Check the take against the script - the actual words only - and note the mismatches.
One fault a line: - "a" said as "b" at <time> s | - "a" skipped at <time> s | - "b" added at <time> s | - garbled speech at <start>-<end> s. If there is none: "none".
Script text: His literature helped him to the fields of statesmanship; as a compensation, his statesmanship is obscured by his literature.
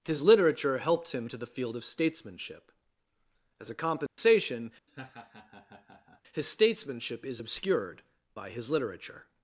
- "fields" said as "field" at 1.4 s